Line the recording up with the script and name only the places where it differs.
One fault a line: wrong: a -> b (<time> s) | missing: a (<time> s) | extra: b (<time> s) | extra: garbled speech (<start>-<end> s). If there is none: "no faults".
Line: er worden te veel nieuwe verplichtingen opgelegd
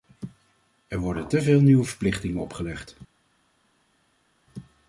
no faults